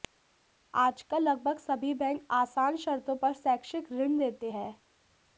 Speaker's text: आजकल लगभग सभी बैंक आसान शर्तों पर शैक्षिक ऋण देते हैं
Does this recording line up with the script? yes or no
yes